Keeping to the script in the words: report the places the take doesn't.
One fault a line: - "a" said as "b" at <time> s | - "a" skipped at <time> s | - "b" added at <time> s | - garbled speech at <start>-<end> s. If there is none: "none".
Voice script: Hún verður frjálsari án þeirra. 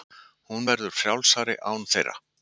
none